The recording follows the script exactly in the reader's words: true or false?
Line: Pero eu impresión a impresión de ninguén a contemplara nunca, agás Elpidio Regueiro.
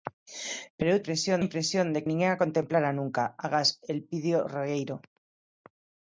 true